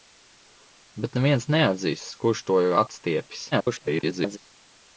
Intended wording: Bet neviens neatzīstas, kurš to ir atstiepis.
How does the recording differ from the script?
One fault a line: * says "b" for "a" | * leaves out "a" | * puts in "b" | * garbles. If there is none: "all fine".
* garbles